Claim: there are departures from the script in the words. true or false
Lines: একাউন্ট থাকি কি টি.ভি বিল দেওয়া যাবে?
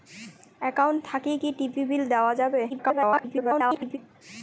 true